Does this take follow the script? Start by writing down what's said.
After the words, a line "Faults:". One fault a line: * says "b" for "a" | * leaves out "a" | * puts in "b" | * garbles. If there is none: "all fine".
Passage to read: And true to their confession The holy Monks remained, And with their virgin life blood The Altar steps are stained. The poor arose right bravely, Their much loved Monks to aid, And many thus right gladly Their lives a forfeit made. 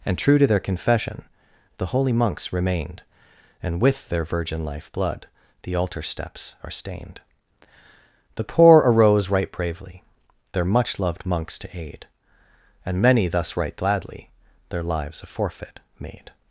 And true to their confession The holy Monks remained, And with their virgin life blood The Altar steps are stained. The poor arose right bravely, Their much loved Monks to aid, And many thus right gladly Their lives a forfeit made.
Faults:
all fine